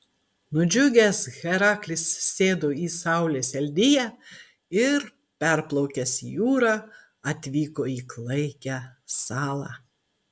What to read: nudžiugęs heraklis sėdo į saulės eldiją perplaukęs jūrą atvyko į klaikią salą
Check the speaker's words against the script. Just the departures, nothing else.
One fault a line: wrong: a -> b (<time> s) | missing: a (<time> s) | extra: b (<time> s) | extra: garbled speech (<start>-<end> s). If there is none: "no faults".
extra: ir (4.8 s)